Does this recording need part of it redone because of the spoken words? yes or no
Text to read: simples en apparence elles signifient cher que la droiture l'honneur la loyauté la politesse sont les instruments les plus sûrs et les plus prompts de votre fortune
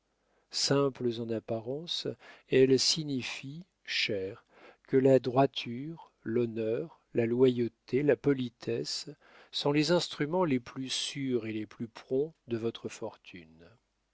no